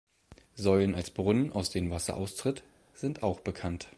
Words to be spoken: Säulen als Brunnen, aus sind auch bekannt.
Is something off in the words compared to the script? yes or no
yes